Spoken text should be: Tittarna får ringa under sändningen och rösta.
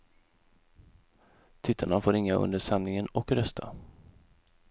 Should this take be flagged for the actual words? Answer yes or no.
no